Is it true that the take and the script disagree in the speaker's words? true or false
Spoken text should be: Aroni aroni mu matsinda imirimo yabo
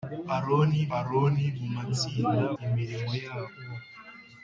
false